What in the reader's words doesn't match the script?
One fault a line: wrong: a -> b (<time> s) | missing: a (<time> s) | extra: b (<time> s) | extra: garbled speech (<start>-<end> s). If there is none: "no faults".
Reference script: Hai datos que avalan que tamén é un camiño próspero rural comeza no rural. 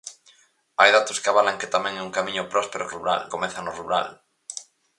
no faults